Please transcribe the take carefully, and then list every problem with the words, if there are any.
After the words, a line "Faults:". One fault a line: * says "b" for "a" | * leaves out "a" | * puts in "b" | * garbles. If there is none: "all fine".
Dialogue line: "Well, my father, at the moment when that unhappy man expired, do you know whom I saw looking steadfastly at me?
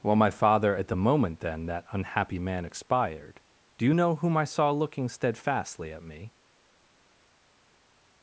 "Well, my father, at the moment then that unhappy man expired, do you know whom I saw looking steadfastly at me?
Faults:
* says "then" for "when"